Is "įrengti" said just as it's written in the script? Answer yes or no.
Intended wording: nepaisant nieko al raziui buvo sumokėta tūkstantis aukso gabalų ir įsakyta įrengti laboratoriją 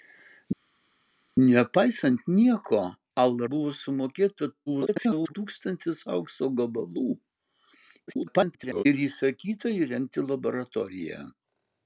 yes